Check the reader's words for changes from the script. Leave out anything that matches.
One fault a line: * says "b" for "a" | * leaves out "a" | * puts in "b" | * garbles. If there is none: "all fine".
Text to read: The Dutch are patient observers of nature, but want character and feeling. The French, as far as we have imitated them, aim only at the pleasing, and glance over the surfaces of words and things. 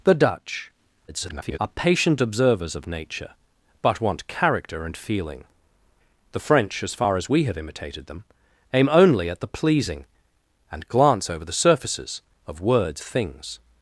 * garbles
* leaves out "and"